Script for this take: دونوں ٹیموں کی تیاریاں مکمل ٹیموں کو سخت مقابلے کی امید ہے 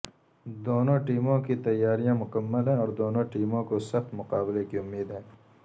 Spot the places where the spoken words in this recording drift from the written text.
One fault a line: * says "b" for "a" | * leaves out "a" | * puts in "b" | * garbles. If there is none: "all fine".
* puts in "ہیں اور دونوں"